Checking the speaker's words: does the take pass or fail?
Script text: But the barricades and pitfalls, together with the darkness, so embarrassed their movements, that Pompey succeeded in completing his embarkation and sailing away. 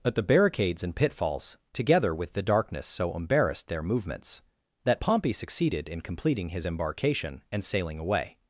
pass